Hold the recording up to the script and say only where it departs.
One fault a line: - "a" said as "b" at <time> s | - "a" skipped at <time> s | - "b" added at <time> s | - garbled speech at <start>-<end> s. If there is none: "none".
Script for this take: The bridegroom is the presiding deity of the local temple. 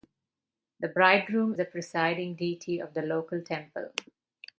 - "is" skipped at 1.5 s